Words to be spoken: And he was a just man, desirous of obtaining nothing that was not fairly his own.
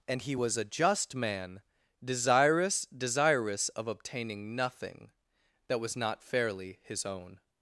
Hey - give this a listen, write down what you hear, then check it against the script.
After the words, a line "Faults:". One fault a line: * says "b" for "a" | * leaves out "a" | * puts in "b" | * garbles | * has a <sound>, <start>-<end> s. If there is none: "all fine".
And he was a just man, desirous desirous of obtaining nothing that was not fairly his own.
Faults:
* puts in "desirous"